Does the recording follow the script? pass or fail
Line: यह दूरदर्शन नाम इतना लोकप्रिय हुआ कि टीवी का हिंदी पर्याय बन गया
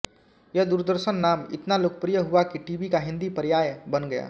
pass